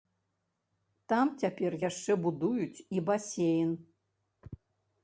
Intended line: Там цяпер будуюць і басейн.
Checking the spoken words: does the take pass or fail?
fail